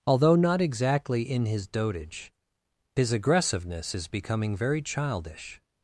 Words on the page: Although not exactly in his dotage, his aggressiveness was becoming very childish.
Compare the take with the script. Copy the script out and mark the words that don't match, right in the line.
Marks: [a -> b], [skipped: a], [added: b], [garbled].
Although not exactly in his dotage, his aggressiveness [was -> is] becoming very childish.